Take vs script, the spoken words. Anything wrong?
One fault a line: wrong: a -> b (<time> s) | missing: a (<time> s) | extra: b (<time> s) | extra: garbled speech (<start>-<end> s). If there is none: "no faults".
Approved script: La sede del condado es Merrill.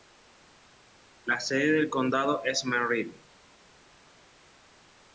no faults